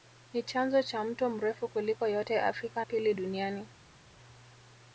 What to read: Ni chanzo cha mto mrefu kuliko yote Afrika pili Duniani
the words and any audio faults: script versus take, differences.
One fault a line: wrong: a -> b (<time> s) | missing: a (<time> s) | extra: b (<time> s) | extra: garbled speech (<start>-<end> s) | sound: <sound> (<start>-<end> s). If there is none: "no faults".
no faults